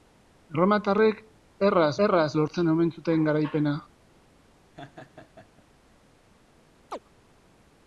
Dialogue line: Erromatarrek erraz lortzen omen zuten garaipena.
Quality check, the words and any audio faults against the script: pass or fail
fail